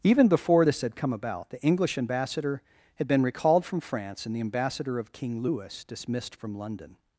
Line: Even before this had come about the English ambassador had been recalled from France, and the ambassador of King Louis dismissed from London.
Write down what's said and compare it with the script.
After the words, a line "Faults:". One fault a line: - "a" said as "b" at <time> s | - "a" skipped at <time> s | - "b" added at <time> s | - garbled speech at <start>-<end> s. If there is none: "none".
Even before this had come about the English ambassador had been recalled from France, and the ambassador of King Louis dismissed from London.
Faults:
none